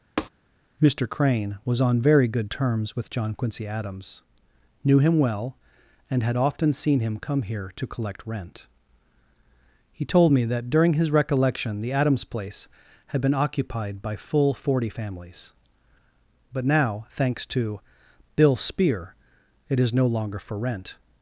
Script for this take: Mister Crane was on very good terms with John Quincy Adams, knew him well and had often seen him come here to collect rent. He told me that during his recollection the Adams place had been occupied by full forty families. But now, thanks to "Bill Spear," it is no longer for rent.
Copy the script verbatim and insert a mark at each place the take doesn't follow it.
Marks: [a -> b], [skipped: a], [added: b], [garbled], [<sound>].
[tap] Mister Crane was on very good terms with John Quincy Adams, knew him well and had often seen him come here to collect rent. He told me that during his recollection the Adams place had been occupied by full forty families. But now, thanks to "Bill Spear," it is no longer for rent.